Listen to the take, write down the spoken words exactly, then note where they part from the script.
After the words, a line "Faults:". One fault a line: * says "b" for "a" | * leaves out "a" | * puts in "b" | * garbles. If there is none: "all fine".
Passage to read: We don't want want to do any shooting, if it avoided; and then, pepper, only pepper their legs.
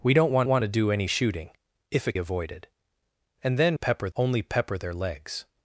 We don't want want to do any shooting, if it avoided; and then, pepper, only pepper their legs.
Faults:
all fine